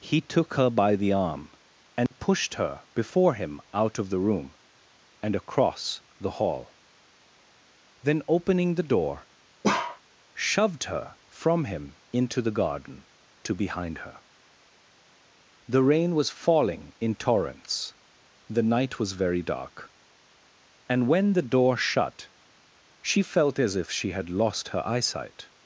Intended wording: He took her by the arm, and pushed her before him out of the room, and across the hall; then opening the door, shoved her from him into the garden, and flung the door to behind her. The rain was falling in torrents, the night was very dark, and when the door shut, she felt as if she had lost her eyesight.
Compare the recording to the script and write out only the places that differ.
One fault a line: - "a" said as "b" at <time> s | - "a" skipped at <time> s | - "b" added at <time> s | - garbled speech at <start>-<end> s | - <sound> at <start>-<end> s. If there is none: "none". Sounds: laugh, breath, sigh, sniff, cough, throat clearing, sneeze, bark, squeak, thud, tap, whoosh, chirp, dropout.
- dropout at 2.1-2.1 s
- bark at 9.6-10.0 s
- "and flung the door" skipped at 13.0 s